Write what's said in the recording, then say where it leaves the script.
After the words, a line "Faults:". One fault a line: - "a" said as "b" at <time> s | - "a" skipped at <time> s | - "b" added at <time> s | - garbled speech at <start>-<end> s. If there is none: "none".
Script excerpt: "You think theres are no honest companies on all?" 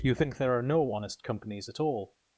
"You think there are no honest companies at all?"
Faults:
- "theres" said as "there" at 0.4 s
- "on" said as "at" at 1.7 s